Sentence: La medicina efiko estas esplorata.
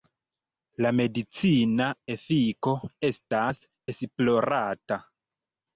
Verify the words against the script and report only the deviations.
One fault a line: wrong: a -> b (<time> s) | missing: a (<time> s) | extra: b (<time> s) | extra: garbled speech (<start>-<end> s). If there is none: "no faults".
no faults